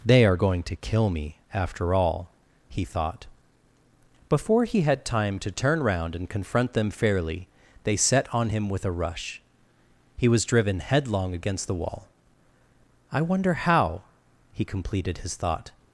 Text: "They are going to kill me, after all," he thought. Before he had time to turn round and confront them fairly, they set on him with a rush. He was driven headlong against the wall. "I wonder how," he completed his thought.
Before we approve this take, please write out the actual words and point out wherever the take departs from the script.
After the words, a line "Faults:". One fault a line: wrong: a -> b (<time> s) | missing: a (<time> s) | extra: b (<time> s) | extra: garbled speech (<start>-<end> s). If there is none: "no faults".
"They are going to kill me, after all," he thought. Before he had time to turn round and confront them fairly, they set on him with a rush. He was driven headlong against the wall. "I wonder how," he completed his thought.
Faults:
no faults